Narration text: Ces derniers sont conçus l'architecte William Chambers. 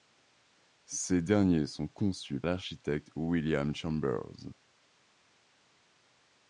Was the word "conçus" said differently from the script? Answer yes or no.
no